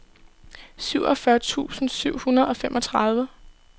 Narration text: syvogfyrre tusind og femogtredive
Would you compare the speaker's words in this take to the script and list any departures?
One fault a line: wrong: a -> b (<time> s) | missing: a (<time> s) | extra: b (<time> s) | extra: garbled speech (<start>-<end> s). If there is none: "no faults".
extra: syv hundrede (1.9 s)